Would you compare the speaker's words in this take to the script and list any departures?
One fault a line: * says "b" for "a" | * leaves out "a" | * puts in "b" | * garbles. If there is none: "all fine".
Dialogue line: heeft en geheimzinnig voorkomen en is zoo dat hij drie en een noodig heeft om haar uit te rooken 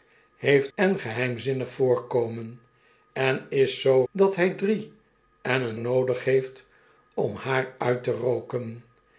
all fine